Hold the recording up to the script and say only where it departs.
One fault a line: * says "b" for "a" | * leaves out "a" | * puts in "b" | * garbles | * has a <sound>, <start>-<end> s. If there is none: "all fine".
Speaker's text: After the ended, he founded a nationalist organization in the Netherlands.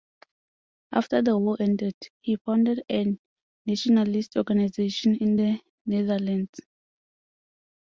* puts in "war"